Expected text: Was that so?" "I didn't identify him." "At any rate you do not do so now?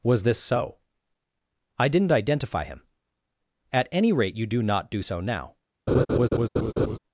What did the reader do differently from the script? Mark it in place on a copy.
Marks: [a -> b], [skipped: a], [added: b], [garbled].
Was [that -> this] so?" "I didn't identify him." "At any rate you do not do so now?